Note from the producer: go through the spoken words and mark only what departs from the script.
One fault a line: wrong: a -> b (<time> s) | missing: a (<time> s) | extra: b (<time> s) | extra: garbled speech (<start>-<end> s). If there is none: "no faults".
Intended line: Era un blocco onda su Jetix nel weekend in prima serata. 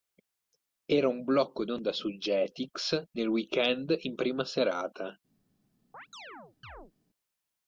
no faults